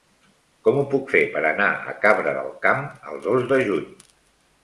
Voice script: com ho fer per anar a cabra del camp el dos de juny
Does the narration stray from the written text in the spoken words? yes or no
yes